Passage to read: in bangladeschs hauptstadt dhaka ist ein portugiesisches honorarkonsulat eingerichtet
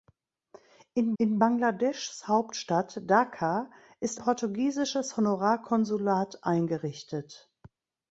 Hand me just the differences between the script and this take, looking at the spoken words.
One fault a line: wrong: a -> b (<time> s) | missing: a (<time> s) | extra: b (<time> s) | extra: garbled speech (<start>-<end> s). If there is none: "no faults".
extra: in (1.2 s)
missing: ein (4.2 s)